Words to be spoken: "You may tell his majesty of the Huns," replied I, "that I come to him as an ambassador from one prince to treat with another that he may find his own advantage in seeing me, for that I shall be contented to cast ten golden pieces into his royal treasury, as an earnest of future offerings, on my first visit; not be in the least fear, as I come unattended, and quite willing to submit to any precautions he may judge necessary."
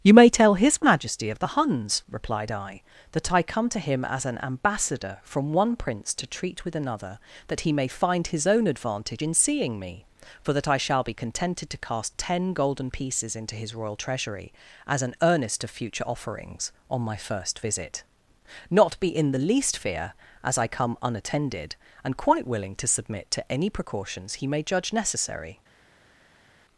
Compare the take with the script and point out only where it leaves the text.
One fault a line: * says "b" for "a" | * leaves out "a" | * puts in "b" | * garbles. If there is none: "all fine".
all fine